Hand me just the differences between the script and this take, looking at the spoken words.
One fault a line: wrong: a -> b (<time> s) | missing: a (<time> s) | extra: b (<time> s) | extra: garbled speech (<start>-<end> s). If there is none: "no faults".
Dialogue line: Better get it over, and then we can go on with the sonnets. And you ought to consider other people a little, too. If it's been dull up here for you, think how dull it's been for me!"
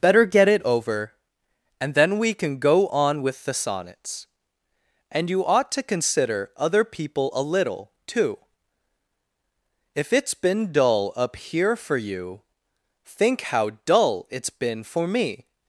no faults